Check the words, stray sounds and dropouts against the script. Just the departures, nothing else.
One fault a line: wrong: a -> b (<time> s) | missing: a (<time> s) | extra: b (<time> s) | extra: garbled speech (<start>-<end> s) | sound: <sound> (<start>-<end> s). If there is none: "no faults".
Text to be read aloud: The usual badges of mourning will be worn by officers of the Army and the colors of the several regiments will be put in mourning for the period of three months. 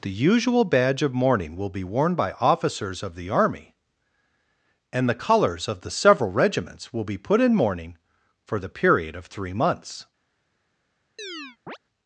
wrong: badges -> badge (0.6 s)
sound: chirp (11.2-11.8 s)